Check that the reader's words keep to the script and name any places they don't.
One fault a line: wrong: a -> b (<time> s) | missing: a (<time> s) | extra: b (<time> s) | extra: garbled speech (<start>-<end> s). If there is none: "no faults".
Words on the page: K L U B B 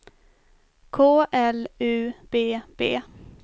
no faults